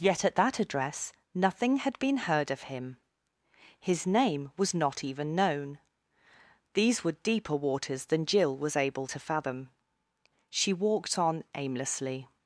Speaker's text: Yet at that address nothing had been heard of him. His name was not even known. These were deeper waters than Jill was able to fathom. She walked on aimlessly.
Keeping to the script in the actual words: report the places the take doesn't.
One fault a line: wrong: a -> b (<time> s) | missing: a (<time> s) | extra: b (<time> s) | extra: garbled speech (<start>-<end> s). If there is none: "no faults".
no faults